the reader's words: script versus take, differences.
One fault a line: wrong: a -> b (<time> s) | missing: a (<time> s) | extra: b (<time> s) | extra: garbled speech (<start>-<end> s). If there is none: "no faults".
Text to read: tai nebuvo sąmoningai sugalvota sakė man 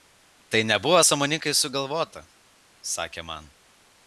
no faults